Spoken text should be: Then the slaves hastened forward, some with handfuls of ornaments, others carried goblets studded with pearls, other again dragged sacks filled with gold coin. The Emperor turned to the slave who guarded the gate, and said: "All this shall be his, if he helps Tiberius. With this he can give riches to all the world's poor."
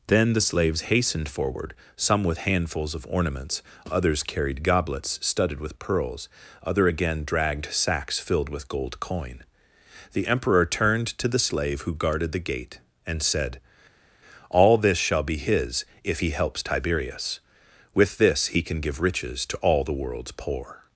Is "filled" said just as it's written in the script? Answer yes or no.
yes